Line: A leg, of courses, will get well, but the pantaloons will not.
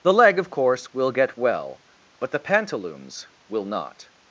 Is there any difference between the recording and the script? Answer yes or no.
yes